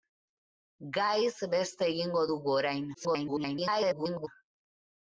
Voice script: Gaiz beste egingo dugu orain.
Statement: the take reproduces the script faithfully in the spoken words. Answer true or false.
false